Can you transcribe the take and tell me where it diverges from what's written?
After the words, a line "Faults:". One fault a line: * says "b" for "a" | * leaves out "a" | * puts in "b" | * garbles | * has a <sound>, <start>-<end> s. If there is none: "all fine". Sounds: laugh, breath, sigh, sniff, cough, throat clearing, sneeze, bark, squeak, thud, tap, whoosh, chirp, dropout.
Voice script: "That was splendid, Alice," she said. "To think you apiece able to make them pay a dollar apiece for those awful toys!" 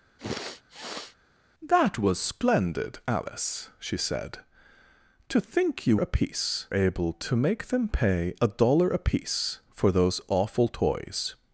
"That was splendid, Alice," she said. "To think you apiece able to make them pay a dollar apiece for those awful toys!"
Faults:
* has a sniff, 0.2-1.2 s